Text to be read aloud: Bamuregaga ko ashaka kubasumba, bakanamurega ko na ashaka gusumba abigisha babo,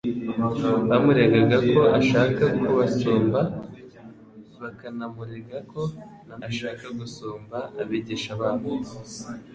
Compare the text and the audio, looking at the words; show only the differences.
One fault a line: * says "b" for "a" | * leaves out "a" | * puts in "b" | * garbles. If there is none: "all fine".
all fine